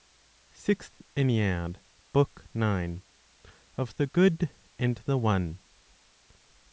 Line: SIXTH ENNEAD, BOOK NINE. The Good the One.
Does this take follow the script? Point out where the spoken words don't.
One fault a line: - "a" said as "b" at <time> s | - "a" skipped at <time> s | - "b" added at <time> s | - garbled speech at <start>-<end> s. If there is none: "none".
- "Of" added at 3.8 s
- "and" added at 4.8 s